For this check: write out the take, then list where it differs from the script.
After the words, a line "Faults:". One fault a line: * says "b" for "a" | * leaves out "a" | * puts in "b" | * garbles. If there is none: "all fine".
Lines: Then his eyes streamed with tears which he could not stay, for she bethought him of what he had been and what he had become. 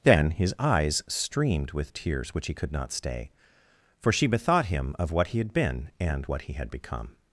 Then his eyes streamed with tears which he could not stay, for she bethought him of what he had been and what he had become.
Faults:
all fine